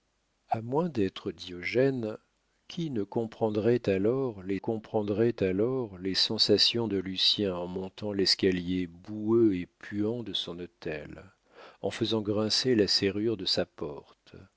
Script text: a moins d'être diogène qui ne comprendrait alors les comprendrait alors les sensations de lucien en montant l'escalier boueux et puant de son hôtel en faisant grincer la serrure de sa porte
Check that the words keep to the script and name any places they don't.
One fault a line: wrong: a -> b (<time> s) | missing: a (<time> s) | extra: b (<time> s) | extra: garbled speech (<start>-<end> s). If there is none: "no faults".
no faults